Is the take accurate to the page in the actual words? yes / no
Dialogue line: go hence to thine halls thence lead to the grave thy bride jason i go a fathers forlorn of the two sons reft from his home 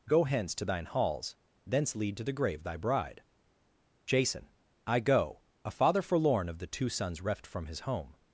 no